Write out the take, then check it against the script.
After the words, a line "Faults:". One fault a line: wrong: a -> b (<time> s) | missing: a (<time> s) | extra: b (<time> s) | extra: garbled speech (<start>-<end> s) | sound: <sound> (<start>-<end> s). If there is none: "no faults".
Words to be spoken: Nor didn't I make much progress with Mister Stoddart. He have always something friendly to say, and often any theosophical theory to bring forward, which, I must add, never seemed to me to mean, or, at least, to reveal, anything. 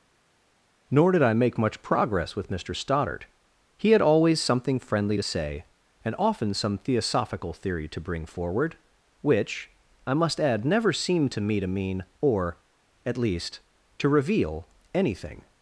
Nor did I make much progress with Mister Stoddart. He had always something friendly to say, and often some theosophical theory to bring forward, which, I must add, never seemed to me to mean, or, at least, to reveal, anything.
Faults:
wrong: didn't -> did (1.1 s)
wrong: have -> had (3.9 s)
wrong: any -> some (6.5 s)